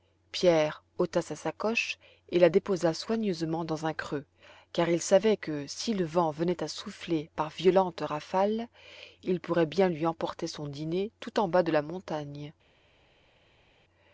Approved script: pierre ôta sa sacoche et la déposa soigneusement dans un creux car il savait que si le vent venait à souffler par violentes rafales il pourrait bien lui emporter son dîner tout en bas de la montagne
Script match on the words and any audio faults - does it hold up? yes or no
yes